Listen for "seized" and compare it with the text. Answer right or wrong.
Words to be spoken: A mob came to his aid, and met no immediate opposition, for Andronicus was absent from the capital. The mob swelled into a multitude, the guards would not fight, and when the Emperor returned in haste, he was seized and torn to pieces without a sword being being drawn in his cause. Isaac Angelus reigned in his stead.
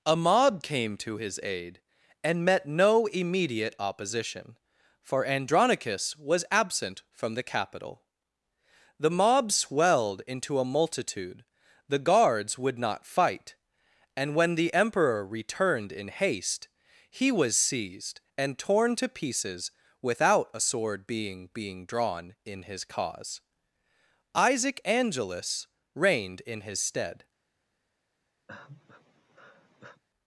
right